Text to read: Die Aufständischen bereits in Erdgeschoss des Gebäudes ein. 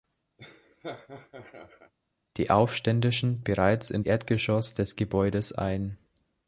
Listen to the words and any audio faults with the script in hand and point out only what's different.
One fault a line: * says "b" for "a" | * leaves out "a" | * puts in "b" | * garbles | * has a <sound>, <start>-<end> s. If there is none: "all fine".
* has a laugh, 0.4-1.9 s